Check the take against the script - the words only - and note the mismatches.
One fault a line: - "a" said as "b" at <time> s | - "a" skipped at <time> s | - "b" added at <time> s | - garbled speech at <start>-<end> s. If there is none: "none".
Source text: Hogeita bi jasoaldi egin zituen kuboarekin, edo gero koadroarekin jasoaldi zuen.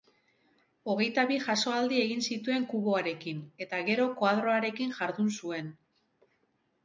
- "edo" said as "eta" at 3.6 s
- "jasoaldi" said as "jardun" at 5.0 s